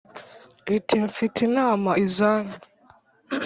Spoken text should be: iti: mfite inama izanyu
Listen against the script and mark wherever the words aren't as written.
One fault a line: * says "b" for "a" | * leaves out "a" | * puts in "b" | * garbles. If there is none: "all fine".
all fine